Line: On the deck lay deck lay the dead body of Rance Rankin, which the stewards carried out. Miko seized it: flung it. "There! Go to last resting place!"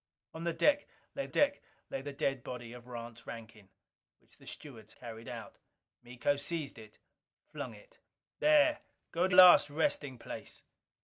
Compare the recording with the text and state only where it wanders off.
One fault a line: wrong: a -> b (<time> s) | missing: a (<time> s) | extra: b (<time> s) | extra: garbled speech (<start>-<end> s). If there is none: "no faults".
no faults